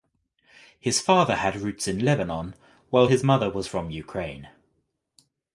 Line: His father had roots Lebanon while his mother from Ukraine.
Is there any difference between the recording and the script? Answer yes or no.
yes